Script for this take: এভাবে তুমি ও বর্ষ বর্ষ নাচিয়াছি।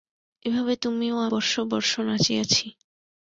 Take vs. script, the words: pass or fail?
pass